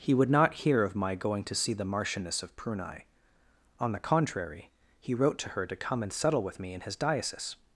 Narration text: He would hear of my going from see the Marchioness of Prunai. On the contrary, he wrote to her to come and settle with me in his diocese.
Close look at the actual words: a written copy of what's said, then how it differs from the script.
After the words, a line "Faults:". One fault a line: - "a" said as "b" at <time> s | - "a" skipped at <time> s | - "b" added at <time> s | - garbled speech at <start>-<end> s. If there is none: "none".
He would not hear of my going to see the Marchioness of Prunai. On the contrary, he wrote to her to come and settle with me in his diocese.
Faults:
- "not" added at 0.3 s
- "from" said as "to" at 1.4 s